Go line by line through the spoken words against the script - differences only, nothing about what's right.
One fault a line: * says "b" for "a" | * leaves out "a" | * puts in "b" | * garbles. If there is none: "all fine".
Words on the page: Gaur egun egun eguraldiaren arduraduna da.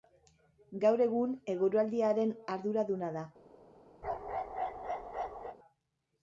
* leaves out "egun"